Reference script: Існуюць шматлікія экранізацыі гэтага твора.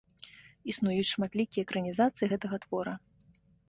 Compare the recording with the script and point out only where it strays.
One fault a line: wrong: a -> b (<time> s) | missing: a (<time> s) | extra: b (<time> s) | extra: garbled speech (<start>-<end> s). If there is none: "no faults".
no faults